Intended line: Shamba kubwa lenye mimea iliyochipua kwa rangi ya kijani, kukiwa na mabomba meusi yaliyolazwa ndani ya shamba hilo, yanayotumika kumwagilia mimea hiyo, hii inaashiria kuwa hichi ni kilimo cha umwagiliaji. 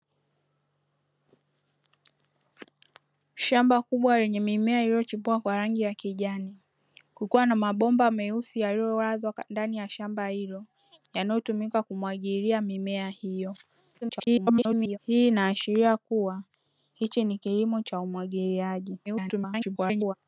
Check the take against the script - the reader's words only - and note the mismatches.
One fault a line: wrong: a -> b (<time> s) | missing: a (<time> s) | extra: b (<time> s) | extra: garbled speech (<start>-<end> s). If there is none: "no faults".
extra: garbled speech (14.0-15.0 s)
extra: garbled speech (19.1-20.1 s)